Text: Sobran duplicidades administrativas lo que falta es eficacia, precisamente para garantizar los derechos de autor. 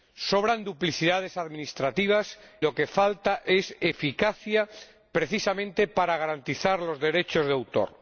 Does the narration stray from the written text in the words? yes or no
no